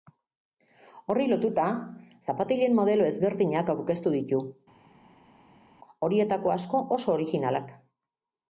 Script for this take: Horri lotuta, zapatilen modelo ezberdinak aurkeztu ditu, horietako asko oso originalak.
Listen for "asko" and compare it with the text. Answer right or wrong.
right